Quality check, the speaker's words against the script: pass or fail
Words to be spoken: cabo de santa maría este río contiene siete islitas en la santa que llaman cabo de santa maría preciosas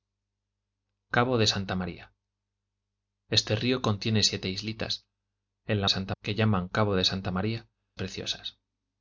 pass